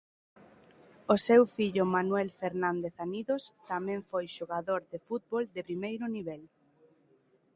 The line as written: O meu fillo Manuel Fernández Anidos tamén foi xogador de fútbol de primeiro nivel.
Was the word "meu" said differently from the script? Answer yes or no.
yes